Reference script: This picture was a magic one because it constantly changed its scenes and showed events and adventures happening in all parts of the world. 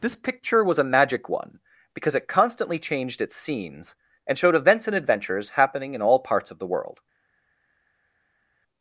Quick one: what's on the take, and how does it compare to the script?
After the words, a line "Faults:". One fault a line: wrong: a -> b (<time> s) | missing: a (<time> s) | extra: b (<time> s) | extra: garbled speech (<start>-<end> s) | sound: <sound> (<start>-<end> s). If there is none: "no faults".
This picture was a magic one because it constantly changed its scenes and showed events and adventures happening in all parts of the world.
Faults:
no faults